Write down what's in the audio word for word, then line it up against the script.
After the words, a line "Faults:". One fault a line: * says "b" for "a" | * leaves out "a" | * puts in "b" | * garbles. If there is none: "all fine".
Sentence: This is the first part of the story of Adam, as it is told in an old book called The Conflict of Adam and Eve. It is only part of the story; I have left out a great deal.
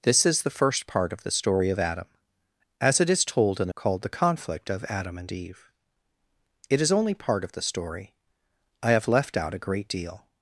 This is the first part of the story of Adam, as it is told in called The Conflict of Adam and Eve. It is only part of the story; I have left out a great deal.
Faults:
* leaves out "an old book"